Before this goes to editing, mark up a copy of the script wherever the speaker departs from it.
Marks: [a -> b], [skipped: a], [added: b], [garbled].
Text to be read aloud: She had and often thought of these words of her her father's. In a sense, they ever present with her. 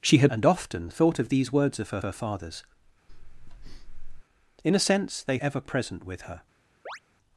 She had and often thought of these words of her her father's. In a sense, they ever present with her.